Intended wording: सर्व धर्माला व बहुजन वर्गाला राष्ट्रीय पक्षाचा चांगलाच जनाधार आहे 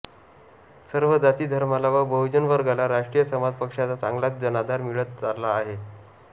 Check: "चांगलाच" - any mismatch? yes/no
no